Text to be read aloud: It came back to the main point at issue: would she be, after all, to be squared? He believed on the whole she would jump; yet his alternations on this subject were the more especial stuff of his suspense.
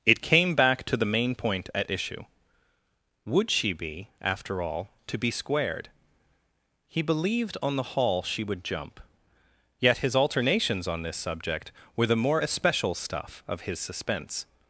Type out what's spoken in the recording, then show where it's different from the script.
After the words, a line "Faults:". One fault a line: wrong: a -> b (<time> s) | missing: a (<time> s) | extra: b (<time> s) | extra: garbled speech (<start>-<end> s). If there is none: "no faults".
It came back to the main point at issue: would she be, after all, to be squared? He believed on the hall she would jump; yet his alternations on this subject were the more especial stuff of his suspense.
Faults:
wrong: whole -> hall (8.0 s)